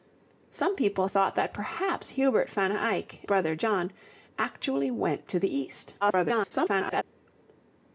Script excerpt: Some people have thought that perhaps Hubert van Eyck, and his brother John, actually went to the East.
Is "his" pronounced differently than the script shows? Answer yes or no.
yes